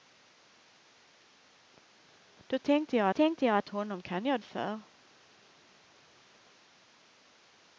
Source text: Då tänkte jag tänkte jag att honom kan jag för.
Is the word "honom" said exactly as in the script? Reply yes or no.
yes